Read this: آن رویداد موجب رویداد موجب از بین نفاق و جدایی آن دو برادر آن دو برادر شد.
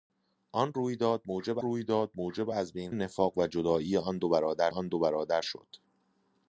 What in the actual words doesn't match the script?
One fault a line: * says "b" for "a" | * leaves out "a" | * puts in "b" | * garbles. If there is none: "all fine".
all fine